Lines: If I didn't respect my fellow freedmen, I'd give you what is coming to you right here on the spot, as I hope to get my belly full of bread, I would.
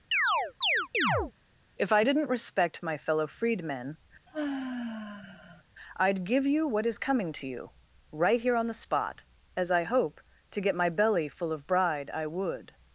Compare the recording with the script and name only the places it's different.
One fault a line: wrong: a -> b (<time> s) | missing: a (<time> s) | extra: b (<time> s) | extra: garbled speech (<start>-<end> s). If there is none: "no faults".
wrong: bread -> bride (11.6 s)